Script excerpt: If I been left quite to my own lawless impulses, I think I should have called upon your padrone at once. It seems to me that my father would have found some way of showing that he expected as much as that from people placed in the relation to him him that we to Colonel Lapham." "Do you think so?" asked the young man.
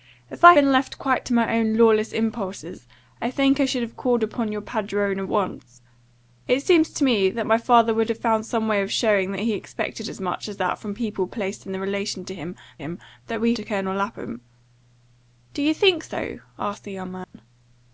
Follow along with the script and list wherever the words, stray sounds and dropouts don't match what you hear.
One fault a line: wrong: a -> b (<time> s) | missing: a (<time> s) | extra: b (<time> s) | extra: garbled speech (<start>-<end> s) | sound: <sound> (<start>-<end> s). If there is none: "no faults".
sound: dropout (17.2-17.3 s)